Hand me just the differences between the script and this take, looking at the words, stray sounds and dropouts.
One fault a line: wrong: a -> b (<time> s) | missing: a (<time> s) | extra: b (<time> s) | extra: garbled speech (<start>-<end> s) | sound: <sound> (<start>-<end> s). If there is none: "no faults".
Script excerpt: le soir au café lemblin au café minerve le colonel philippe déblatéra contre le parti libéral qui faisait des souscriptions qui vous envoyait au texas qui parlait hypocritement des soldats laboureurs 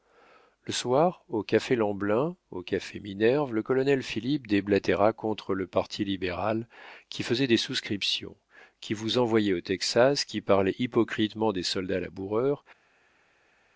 no faults